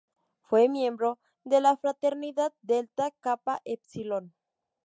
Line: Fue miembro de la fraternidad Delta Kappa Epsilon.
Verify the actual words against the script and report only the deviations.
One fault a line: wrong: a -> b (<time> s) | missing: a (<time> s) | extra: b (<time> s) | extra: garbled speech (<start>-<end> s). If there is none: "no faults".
no faults